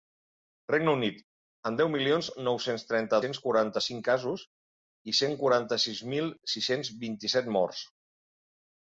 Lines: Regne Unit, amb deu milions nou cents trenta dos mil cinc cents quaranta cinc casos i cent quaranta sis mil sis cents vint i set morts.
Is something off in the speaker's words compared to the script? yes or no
yes